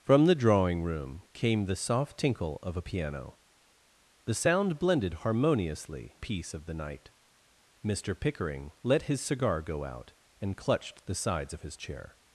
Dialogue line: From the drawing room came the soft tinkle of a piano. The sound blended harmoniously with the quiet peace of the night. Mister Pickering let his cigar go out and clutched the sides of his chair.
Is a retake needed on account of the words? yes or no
yes